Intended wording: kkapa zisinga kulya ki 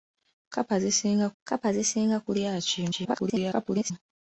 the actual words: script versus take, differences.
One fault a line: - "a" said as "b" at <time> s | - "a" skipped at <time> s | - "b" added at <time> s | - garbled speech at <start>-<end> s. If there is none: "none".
- "kkapa zisinga" added at 1.4 s
- garbled speech at 2.9-3.9 s